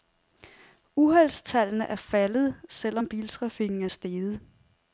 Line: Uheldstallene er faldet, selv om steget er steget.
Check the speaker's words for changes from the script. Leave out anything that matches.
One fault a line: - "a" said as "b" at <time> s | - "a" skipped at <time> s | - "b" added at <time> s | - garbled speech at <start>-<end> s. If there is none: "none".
- "steget" said as "biltrafikken" at 3.1 s